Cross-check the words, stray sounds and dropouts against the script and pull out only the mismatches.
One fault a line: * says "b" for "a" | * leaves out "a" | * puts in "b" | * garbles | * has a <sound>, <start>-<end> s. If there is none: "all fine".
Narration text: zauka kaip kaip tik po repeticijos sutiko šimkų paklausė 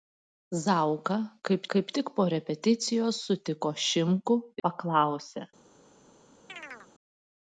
* has a chirp, 6.5-6.9 s